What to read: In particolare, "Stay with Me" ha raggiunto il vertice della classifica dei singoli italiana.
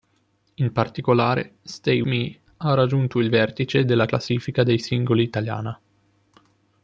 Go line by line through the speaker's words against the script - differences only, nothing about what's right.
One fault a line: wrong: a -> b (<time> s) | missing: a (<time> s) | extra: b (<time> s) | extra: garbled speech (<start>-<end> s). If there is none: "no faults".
missing: with (2.0 s)